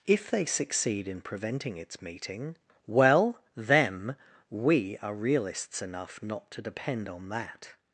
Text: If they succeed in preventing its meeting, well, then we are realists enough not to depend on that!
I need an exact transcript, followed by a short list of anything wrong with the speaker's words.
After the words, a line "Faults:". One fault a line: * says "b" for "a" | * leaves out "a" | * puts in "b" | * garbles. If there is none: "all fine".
If they succeed in preventing its meeting, well, them we are realists enough not to depend on that!
Faults:
* says "them" for "then"